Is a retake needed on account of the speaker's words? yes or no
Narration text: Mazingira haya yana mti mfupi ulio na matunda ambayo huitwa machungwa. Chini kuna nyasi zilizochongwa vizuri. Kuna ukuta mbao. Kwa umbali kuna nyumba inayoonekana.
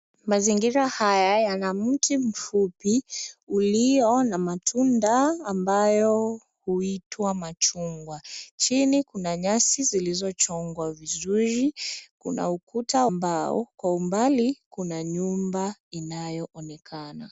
no